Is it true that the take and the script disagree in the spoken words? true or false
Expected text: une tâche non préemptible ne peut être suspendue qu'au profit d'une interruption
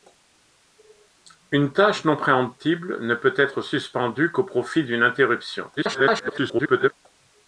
true